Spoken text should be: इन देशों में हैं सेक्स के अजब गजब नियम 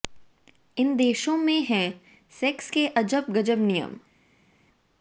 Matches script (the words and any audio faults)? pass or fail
pass